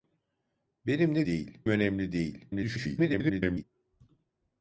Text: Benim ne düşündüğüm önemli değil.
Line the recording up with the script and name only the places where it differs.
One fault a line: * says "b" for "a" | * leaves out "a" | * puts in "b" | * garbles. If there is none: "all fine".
* says "değil" for "düşündüğüm"
* garbles